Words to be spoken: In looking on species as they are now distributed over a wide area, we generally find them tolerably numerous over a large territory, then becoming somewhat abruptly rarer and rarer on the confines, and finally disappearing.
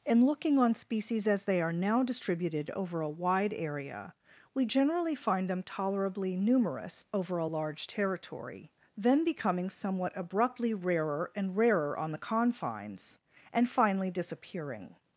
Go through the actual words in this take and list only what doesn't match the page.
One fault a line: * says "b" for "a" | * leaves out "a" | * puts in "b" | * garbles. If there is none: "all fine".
all fine